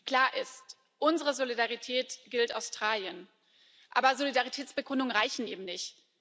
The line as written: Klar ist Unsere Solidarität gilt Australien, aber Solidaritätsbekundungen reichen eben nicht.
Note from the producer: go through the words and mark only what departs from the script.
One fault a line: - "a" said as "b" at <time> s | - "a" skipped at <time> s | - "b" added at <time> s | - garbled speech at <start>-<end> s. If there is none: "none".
none